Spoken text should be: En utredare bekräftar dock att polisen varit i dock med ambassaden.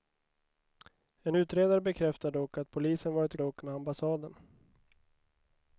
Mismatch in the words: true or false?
false